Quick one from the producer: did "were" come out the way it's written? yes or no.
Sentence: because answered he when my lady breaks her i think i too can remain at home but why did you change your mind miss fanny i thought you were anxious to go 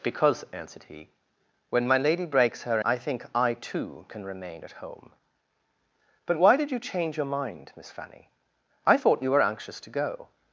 yes